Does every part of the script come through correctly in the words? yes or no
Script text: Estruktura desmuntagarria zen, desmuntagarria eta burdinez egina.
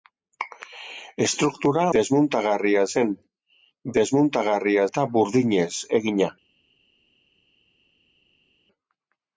yes